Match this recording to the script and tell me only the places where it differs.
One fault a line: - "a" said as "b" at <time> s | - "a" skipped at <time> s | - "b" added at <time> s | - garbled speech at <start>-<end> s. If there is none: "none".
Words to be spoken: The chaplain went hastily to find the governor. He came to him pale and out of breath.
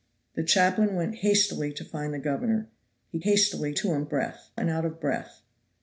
- "came" said as "hastily" at 3.2 s
- "pale" said as "breath" at 4.1 s